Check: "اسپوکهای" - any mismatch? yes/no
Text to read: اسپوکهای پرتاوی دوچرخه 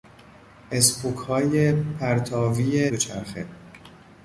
no